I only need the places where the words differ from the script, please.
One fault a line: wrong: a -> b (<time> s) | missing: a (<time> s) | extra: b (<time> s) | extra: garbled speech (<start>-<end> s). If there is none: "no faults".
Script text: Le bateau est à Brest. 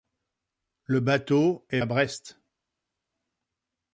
no faults